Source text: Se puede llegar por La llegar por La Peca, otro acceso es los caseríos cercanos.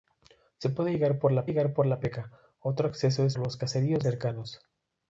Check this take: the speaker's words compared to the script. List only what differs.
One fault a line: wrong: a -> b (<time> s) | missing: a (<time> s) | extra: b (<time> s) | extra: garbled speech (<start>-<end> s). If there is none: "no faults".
no faults